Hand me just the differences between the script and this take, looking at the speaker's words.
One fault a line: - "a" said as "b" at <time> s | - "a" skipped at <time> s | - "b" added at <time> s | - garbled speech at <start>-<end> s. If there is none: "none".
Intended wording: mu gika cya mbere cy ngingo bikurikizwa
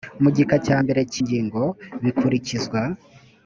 none